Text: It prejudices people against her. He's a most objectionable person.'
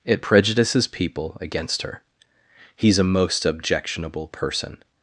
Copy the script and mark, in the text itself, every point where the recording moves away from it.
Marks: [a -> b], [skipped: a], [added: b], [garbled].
It prejudices people against her. He's a most objectionable person.'